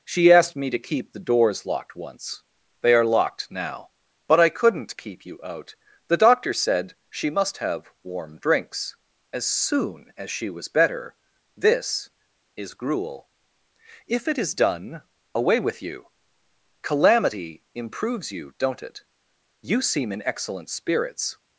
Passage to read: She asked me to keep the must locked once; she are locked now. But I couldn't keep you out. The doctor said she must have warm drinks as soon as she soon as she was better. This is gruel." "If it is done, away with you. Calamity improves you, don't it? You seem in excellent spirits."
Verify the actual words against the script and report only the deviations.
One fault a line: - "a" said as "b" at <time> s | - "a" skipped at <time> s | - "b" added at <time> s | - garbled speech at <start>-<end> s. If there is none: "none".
- "must" said as "doors" at 1.2 s
- "she" said as "they" at 2.8 s
- "soon as she" skipped at 10.5 s